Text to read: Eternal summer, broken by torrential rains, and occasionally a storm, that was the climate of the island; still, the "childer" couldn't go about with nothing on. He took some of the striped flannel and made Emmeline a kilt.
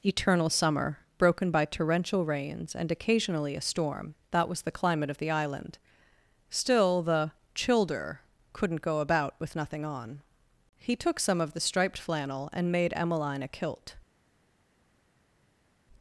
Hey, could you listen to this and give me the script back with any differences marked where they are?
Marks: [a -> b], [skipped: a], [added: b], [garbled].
Eternal summer, broken by torrential rains, and occasionally a storm, that was the climate of the island; still, the "childer" couldn't go about with nothing on. He took some of the striped flannel and made Emmeline a kilt.